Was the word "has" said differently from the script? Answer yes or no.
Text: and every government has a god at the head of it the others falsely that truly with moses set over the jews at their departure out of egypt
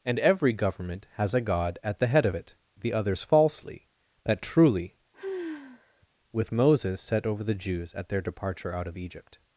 no